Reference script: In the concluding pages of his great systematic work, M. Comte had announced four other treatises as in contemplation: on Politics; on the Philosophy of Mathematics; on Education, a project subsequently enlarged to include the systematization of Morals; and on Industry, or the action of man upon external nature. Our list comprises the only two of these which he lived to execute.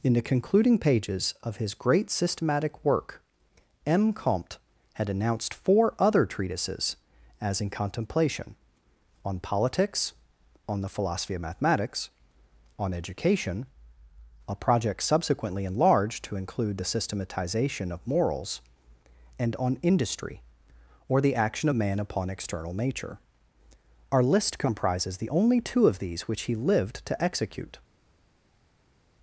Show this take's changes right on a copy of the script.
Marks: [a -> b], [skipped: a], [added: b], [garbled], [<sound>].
In the concluding pages of his great systematic work, M. Comte had announced four other treatises as in contemplation: on Politics; on the Philosophy of Mathematics; on Education, a project subsequently enlarged to include the systematization of Morals; and on Industry, or the action of man upon external nature. Our list comprises the only two of these which he lived to execute.